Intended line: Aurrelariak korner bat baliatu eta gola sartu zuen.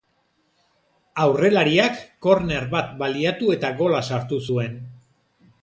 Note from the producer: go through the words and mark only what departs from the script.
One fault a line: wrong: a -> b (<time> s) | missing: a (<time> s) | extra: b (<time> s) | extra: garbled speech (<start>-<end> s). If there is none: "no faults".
no faults